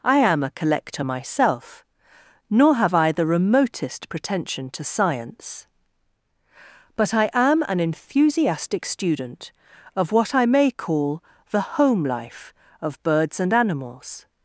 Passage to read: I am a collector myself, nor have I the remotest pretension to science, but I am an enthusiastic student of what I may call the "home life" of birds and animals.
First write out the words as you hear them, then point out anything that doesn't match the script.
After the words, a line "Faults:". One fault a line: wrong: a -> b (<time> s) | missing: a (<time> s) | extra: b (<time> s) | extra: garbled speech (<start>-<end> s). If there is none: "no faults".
I am a collector myself, nor have I the remotest pretension to science, but I am an enthusiastic student of what I may call the "home life" of birds and animals.
Faults:
no faults